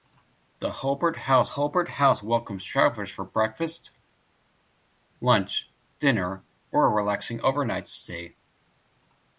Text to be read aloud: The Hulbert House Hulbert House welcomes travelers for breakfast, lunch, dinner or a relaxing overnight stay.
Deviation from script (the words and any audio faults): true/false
false